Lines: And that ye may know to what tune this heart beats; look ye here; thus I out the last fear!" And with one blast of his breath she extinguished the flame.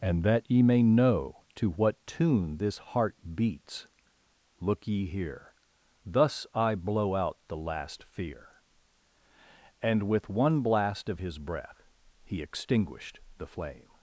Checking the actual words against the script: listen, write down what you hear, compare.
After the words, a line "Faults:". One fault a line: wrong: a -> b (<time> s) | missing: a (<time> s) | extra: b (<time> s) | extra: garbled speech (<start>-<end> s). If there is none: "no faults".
And that ye may know to what tune this heart beats; look ye here; thus I blow out the last fear!" And with one blast of his breath he extinguished the flame.
Faults:
extra: blow (6.7 s)
wrong: she -> he (12.2 s)